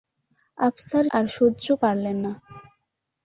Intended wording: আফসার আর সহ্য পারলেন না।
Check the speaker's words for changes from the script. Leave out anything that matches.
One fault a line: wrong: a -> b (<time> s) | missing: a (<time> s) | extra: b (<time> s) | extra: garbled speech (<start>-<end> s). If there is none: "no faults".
no faults